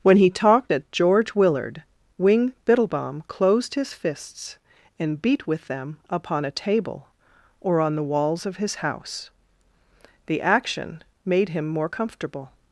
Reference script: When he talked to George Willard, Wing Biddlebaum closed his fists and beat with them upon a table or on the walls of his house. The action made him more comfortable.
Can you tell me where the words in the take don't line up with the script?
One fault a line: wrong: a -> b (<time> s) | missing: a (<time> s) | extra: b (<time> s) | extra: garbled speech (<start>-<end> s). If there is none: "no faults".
wrong: to -> at (0.7 s)